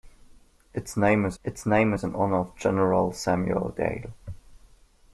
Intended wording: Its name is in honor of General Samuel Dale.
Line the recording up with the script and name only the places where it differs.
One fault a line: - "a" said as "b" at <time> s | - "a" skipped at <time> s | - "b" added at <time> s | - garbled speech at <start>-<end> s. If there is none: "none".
- "its name is" added at 1.4 s